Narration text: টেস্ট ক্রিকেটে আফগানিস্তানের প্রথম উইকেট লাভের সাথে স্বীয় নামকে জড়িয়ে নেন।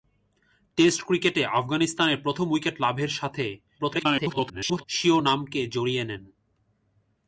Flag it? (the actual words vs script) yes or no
yes